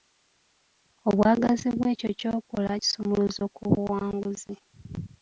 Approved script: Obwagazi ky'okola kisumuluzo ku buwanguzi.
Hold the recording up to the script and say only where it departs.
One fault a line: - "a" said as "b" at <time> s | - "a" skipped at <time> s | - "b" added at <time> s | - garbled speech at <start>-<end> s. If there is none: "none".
- "bwekyo" added at 1.8 s